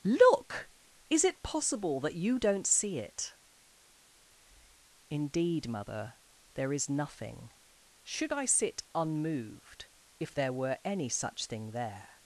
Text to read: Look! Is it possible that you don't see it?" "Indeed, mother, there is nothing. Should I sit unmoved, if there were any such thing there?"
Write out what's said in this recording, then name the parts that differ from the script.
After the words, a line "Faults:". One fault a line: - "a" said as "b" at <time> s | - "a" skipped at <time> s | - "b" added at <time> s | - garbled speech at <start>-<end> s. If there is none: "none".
Look! Is it possible that you don't see it?" "Indeed, mother, there is nothing. Should I sit unmoved, if there were any such thing there?"
Faults:
none